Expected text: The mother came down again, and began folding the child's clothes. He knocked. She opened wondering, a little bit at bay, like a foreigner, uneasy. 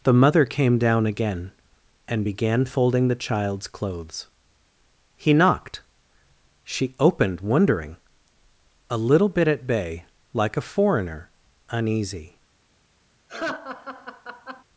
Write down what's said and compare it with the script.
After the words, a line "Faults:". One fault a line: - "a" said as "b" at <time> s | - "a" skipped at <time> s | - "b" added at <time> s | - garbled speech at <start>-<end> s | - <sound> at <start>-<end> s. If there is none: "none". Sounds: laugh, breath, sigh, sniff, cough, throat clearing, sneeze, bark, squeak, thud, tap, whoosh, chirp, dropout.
The mother came down again, and began folding the child's clothes. He knocked. She opened wondering, a little bit at bay, like a foreigner, uneasy.
Faults:
- laugh at 13.3-14.6 s